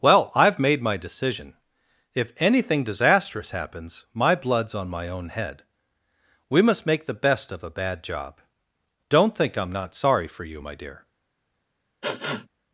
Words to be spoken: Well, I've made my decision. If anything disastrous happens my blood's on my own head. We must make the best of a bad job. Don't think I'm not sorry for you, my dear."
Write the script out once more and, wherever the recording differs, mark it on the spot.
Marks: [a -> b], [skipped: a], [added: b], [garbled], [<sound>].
Well, I've made my decision. If anything disastrous happens my blood's on my own head. We must make the best of a bad job. Don't think I'm not sorry for you, my dear." [sniff]